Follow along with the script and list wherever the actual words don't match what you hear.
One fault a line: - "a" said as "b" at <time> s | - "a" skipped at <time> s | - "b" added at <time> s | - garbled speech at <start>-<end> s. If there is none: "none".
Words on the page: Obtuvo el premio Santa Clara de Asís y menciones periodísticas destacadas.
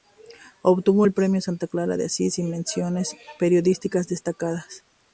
none